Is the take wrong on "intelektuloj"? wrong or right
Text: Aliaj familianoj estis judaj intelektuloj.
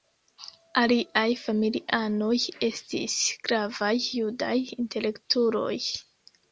right